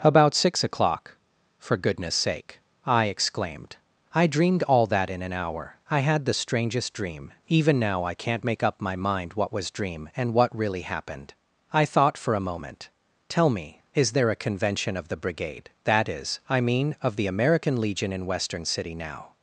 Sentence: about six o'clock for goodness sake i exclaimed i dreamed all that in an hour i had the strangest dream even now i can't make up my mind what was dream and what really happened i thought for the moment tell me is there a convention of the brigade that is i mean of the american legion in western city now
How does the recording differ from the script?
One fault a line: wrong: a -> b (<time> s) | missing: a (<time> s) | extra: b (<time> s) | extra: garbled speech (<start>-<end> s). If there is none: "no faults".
wrong: the -> a (12.3 s)